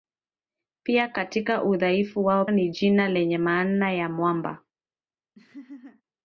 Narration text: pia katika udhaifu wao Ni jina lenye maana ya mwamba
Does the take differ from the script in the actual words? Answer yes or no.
no